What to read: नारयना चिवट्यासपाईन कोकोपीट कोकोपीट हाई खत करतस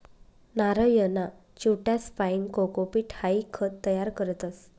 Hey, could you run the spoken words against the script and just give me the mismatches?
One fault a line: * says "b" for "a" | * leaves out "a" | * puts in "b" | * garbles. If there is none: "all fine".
* leaves out "कोकोपीट"
* puts in "तयार"